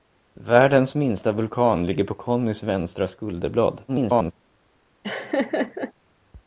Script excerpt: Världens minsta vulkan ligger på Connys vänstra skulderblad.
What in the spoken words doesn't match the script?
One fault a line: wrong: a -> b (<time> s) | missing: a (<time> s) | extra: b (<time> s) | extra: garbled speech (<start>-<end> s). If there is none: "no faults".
extra: garbled speech (3.9-4.3 s)